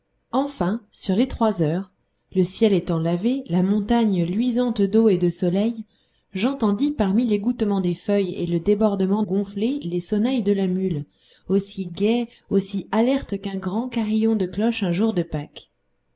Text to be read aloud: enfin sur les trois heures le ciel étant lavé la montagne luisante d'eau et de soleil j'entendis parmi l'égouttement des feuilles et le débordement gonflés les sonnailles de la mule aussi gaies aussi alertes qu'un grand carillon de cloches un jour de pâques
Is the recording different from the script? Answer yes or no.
no